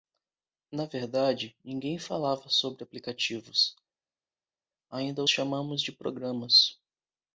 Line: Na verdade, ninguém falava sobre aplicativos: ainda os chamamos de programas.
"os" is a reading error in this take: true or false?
true